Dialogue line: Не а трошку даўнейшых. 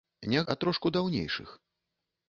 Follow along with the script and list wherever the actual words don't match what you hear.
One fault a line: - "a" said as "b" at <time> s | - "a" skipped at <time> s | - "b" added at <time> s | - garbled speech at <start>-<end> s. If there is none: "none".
none